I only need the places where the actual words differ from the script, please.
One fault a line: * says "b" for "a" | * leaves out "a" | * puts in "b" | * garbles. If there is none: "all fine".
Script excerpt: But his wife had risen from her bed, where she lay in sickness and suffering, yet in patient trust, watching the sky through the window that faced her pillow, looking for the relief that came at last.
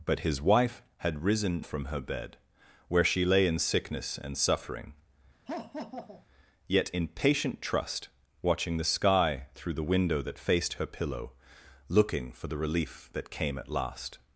all fine